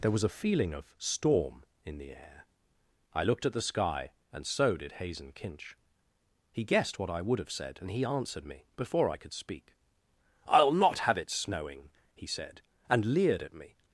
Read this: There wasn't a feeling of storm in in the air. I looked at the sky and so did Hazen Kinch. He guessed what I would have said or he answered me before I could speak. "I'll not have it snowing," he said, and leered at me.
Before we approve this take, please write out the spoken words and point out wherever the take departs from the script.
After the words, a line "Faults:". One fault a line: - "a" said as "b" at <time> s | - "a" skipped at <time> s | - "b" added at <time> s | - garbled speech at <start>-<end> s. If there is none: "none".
There was a feeling of storm in the air. I looked at the sky and so did Hazen Kinch. He guessed what I would have said and he answered me before I could speak. "I'll not have it snowing," he said, and leered at me.
Faults:
- "wasn't" said as "was" at 0.1 s
- "in" skipped at 2.0 s
- "or" said as "and" at 7.8 s